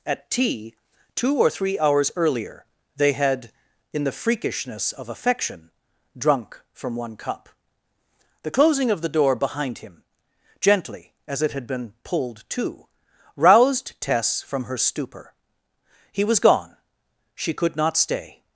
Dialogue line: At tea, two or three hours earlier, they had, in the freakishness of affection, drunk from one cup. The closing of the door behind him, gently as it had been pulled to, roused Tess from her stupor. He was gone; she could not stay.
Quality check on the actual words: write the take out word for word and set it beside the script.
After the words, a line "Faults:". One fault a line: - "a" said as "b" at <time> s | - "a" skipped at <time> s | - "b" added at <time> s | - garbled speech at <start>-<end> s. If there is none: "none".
At tea, two or three hours earlier, they had, in the freakishness of affection, drunk from one cup. The closing of the door behind him, gently as it had been pulled to, roused Tess from her stupor. He was gone; she could not stay.
Faults:
none